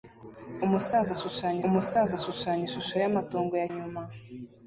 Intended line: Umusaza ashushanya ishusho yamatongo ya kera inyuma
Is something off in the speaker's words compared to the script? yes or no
yes